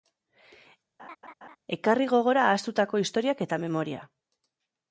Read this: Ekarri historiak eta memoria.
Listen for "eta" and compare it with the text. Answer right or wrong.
right